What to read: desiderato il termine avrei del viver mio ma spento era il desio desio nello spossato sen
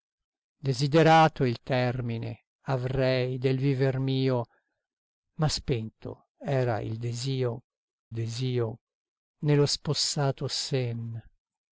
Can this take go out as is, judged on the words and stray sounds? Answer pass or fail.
pass